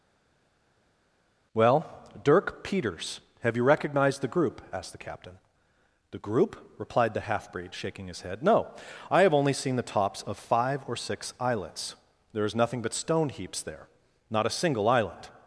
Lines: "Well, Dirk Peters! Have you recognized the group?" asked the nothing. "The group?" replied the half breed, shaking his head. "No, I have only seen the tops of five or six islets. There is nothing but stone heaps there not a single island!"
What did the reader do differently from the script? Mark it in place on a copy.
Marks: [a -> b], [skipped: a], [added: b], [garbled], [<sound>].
"Well, Dirk Peters! Have you recognized the group?" asked the [nothing. -> captain] "The group?" replied the half breed, shaking his head. "No, I have only seen the tops of five or six islets. There is nothing but stone heaps there not a single island!"